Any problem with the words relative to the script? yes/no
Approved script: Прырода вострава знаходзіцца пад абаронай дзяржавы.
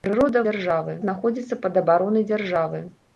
yes